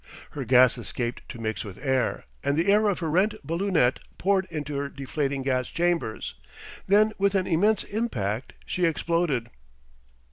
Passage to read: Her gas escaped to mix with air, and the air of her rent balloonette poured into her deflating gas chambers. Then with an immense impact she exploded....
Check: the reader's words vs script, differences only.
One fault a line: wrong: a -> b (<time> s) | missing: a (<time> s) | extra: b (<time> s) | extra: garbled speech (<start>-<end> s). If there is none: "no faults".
no faults